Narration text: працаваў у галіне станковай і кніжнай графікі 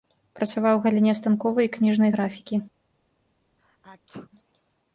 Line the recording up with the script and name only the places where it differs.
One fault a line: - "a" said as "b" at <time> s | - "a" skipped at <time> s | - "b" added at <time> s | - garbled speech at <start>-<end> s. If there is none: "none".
none